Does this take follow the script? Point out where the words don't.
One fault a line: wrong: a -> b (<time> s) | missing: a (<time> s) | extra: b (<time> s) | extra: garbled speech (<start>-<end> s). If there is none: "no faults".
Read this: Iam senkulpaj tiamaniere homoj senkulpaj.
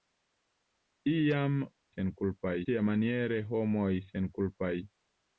no faults